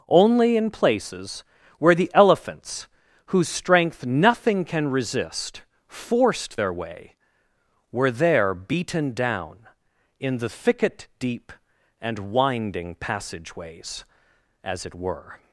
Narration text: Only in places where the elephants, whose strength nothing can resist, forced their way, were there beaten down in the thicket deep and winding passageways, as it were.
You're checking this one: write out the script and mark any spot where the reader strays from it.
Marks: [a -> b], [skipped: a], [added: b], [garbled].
Only in places where the elephants, whose strength nothing can resist, forced their way, were there beaten down in the thicket deep and winding passageways, as it were.